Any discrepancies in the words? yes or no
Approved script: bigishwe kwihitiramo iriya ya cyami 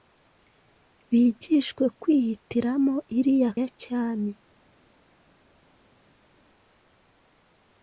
no